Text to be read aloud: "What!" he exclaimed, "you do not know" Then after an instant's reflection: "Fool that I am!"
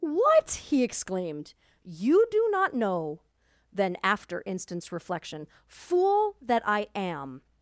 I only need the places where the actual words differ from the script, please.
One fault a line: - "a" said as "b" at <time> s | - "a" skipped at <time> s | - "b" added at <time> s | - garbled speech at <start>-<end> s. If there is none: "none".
- "an" skipped at 4.4 s